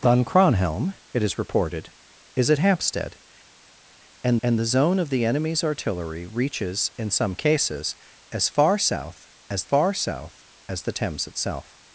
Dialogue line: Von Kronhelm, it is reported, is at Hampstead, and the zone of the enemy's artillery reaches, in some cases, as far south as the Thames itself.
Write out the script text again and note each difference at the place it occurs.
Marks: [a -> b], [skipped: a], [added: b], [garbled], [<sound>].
Von Kronhelm, it is reported, is at Hampstead, and [added: and] the zone of the enemy's artillery reaches, in some cases, as far south as [added: far south as] the Thames itself.